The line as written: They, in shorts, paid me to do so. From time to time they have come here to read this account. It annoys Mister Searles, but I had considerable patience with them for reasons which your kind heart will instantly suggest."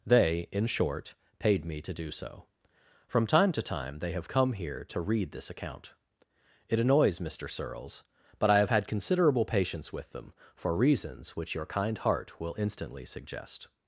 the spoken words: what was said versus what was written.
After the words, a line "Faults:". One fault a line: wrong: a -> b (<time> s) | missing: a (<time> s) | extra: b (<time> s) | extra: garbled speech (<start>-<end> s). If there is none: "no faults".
They, in short, paid me to do so. From time to time they have come here to read this account. It annoys Mister Searles, but I have had considerable patience with them for reasons which your kind heart will instantly suggest."
Faults:
wrong: shorts -> short (0.7 s)
extra: have (8.6 s)